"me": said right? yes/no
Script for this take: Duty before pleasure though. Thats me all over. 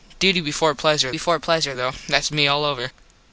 yes